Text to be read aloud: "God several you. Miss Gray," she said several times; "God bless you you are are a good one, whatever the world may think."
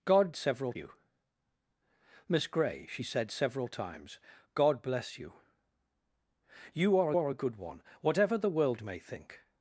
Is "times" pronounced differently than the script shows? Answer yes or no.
no